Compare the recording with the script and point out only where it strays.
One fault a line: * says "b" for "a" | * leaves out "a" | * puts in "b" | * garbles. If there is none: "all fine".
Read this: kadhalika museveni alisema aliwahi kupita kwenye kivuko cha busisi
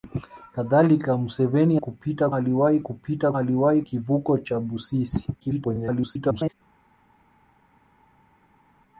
* says "kupita" for "alisema"
* says "aliwahi" for "kwenye"
* garbles